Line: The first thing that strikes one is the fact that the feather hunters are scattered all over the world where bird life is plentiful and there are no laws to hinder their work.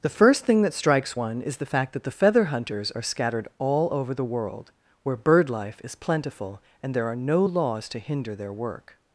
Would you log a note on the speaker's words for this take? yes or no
no